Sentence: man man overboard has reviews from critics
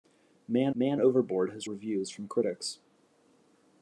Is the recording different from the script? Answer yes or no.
no